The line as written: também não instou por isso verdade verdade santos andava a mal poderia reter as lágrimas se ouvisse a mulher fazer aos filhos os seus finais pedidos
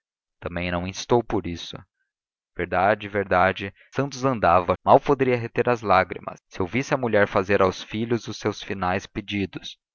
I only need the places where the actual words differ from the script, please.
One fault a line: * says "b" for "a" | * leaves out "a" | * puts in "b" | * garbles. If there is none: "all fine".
all fine